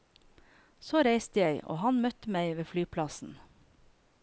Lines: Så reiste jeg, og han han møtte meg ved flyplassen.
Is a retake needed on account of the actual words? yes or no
yes